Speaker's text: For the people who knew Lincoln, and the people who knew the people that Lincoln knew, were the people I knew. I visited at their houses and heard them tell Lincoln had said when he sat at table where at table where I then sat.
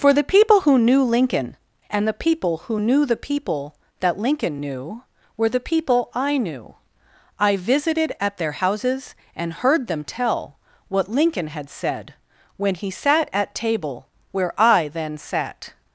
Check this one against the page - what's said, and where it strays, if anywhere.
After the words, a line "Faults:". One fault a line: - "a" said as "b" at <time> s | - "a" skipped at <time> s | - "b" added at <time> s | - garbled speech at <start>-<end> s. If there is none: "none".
For the people who knew Lincoln, and the people who knew the people that Lincoln knew, were the people I knew. I visited at their houses and heard them tell what Lincoln had said when he sat at table where I then sat.
Faults:
- "what" added at 10.9 s
- "at table where" skipped at 14.5 s